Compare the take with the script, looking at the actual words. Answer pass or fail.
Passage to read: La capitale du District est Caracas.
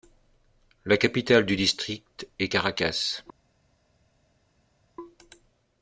pass